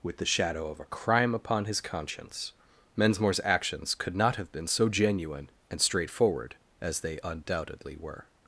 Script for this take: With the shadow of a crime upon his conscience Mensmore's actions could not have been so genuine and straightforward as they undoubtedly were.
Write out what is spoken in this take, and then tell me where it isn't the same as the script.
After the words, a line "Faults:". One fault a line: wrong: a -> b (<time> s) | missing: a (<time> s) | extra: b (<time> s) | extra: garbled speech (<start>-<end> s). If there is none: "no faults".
With the shadow of a crime upon his conscience Mensmore's actions could not have been so genuine and straightforward as they undoubtedly were.
Faults:
no faults